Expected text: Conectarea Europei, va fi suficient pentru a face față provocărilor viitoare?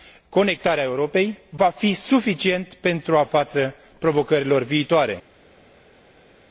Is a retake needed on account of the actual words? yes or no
yes